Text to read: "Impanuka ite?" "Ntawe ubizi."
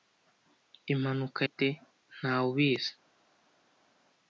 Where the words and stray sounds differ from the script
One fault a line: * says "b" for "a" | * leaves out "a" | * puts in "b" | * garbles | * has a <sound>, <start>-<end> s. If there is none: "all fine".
all fine